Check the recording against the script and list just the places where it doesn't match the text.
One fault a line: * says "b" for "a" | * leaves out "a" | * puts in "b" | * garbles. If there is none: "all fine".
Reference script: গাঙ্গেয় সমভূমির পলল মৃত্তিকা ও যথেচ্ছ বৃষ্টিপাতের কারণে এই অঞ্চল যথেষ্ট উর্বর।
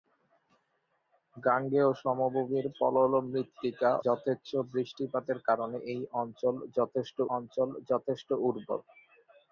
* leaves out "ও"
* puts in "অঞ্চল যথেষ্ট"